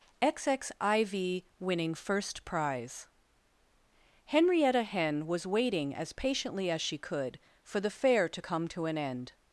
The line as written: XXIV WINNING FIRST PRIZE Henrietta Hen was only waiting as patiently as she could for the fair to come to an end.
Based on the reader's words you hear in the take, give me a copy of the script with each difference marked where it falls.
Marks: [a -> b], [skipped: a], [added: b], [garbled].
XXIV WINNING FIRST PRIZE Henrietta Hen was [skipped: only] waiting as patiently as she could for the fair to come to an end.